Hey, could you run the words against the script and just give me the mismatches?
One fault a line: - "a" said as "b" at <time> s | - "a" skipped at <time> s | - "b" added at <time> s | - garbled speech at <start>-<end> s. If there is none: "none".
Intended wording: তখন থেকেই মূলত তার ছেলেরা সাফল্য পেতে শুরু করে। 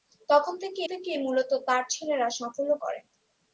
- "থেকেই" added at 0.9 s
- "পেতে শুরু" skipped at 2.7 s